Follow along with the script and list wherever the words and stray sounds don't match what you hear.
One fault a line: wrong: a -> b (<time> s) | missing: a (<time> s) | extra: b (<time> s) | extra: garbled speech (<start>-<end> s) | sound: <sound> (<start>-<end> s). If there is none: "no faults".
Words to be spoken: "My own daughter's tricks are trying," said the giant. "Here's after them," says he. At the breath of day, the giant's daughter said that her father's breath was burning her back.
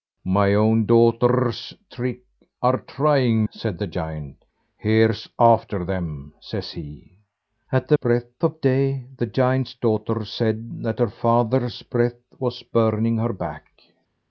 no faults